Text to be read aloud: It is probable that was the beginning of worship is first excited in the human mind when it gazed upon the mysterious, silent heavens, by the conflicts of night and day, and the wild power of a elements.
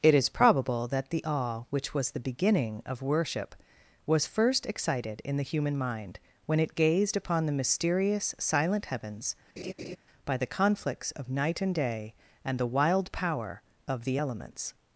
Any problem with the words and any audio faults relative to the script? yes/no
yes